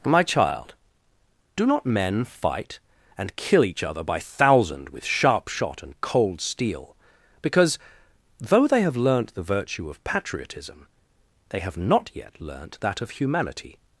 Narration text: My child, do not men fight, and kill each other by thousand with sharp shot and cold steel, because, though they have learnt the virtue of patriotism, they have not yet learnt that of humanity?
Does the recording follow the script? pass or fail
pass